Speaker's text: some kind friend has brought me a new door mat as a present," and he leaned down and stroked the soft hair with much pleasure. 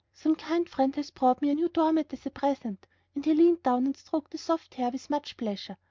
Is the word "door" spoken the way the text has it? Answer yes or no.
yes